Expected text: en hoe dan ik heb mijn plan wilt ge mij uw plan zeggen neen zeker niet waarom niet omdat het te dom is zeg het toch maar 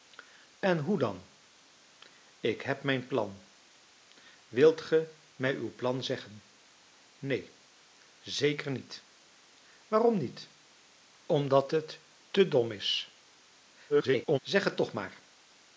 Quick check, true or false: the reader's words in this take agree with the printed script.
false